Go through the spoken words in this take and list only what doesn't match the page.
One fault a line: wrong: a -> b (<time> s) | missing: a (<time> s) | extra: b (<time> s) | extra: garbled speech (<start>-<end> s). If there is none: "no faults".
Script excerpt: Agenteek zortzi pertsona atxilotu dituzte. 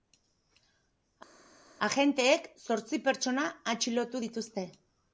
no faults